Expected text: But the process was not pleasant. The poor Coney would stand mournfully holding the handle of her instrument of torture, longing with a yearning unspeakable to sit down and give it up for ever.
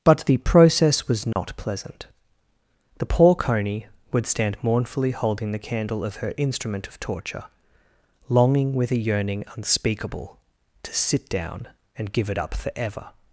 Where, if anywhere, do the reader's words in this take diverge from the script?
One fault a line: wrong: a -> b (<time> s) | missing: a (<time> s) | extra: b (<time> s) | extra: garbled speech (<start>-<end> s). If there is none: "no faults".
wrong: handle -> candle (5.6 s)